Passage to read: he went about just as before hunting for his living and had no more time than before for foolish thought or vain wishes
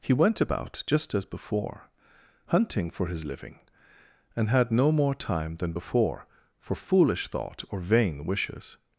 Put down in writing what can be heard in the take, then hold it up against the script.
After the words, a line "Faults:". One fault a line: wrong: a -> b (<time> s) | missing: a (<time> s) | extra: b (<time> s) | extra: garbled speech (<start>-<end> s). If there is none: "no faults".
he went about just as before hunting for his living and had no more time than before for foolish thought or vain wishes
Faults:
no faults